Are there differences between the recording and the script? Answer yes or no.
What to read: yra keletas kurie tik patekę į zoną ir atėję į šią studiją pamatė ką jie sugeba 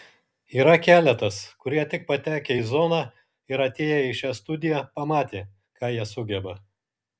no